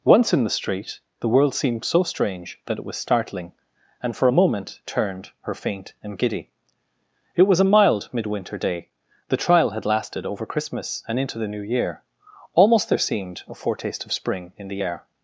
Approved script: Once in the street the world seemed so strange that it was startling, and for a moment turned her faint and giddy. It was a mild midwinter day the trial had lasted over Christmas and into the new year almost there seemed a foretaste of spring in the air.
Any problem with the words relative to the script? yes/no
no